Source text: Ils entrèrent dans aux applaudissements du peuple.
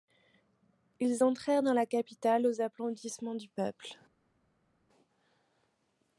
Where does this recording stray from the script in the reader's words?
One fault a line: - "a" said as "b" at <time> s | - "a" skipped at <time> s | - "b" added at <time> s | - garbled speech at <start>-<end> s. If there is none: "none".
- "la capitale" added at 1.7 s